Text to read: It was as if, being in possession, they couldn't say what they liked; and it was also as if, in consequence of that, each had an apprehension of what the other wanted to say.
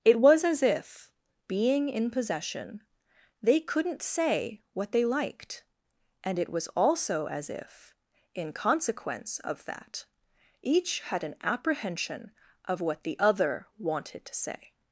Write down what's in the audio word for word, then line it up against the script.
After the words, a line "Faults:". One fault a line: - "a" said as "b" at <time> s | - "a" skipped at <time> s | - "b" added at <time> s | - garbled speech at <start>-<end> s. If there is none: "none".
It was as if, being in possession, they couldn't say what they liked; and it was also as if, in consequence of that, each had an apprehension of what the other wanted to say.
Faults:
none